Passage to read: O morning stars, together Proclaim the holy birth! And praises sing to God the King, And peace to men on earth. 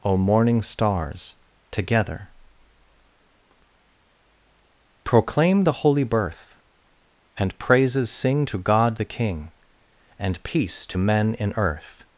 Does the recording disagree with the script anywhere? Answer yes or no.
yes